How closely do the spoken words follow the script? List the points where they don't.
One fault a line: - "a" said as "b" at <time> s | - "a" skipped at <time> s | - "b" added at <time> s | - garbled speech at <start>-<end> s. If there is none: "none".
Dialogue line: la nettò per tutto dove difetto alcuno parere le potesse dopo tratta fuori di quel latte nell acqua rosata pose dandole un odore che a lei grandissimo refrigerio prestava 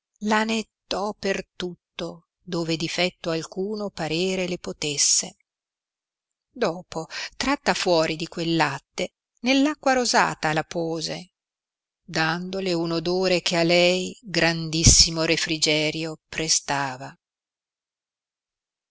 - "la" added at 10.5 s